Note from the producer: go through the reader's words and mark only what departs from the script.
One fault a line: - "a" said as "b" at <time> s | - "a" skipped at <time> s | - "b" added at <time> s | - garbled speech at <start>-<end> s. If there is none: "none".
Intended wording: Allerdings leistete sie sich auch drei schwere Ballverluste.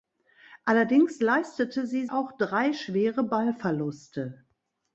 - "sich" skipped at 2.1 s